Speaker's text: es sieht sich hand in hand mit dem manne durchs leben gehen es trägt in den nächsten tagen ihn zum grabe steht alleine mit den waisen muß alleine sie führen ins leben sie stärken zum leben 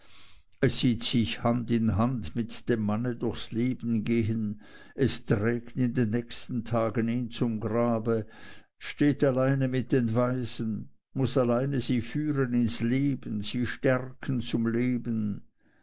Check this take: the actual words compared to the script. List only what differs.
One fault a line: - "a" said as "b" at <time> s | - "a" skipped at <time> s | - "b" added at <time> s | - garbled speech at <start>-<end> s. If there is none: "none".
none